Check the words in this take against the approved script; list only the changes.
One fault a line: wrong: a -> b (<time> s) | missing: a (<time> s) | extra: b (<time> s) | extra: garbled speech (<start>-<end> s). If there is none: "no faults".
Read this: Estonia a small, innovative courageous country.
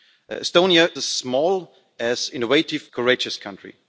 no faults